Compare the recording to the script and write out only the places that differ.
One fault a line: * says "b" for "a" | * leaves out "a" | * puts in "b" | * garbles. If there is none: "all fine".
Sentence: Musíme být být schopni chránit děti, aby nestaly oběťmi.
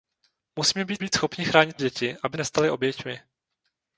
all fine